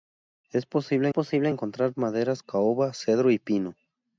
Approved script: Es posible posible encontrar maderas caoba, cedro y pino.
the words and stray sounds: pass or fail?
pass